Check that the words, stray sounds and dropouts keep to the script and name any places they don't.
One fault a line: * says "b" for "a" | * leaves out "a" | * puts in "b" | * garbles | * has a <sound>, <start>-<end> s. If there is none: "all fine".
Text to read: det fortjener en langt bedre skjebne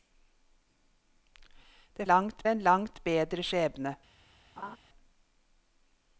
* says "langt" for "fortjener"
* has a laugh, 4.6-4.8 s